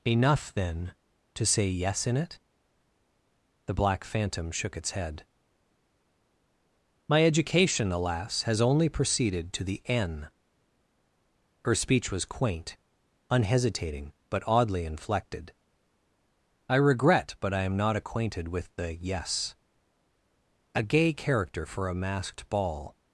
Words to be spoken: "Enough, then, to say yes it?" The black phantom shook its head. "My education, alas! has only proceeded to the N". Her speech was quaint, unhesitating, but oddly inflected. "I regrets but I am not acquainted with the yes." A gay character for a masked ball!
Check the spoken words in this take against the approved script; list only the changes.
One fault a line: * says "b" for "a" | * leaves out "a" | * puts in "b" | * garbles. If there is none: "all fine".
* puts in "in"
* says "regret" for "regrets"